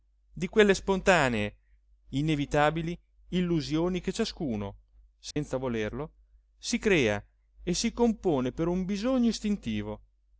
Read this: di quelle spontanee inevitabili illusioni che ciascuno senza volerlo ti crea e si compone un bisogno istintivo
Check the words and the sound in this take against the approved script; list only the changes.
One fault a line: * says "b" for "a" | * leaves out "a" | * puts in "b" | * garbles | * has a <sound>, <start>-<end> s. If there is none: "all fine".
* has a dropout, 5.3-5.4 s
* says "si" for "ti"
* puts in "per"